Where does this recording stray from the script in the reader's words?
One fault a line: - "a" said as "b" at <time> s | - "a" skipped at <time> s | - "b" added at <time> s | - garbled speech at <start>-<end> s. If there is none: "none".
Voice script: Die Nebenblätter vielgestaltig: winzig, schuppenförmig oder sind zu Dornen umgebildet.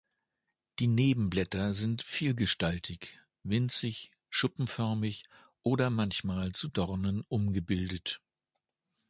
- "sind" added at 1.7 s
- "sind" said as "manchmal" at 5.9 s